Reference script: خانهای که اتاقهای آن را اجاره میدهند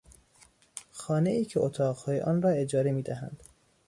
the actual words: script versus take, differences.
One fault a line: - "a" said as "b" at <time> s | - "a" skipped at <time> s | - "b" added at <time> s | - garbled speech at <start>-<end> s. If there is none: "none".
none